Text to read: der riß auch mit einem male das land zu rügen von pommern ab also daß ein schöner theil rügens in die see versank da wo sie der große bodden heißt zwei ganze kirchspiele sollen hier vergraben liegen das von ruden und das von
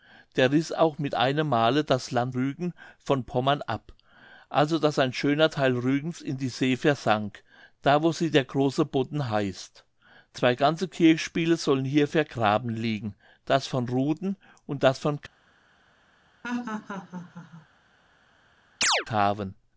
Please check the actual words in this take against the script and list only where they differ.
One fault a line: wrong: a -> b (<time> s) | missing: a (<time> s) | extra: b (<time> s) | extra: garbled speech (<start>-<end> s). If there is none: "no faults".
missing: zu (2.3 s)